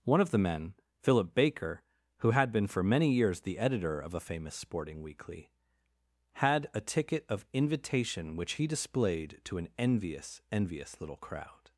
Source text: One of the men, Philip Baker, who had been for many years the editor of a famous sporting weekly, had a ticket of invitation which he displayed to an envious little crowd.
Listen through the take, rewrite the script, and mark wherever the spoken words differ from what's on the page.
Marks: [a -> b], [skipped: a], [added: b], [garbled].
One of the men, Philip Baker, who had been for many years the editor of a famous sporting weekly, had a ticket of invitation which he displayed to an envious [added: envious] little crowd.